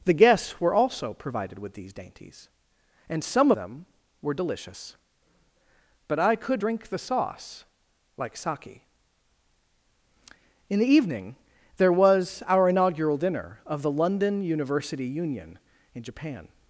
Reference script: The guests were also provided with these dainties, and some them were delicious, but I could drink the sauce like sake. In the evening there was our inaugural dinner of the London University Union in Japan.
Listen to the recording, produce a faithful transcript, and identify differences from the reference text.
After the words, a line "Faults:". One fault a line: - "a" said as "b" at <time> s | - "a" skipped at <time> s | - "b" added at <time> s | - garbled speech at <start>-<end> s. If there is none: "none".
The guests were also provided with these dainties, and some them were delicious, but I could drink the sauce like sake. In the evening there was our inaugural dinner of the London University Union in Japan.
Faults:
none